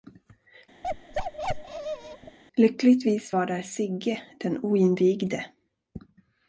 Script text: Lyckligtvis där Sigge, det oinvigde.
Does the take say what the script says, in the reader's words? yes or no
no